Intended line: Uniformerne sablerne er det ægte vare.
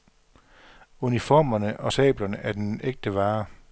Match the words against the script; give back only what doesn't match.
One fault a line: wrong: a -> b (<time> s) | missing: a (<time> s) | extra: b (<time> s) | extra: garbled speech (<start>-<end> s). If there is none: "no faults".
extra: og (1.8 s)
wrong: det -> den (2.5 s)